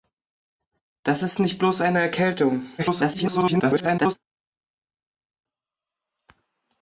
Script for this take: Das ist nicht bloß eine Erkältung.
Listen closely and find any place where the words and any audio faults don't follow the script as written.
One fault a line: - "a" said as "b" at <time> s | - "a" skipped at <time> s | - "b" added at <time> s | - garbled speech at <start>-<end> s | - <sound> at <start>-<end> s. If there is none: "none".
- garbled speech at 2.8-4.2 s